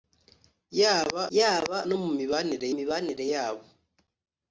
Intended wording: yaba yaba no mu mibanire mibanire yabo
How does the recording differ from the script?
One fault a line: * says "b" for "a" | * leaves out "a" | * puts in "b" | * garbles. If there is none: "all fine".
all fine